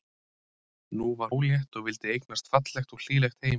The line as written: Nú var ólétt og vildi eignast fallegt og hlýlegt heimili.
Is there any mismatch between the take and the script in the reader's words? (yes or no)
no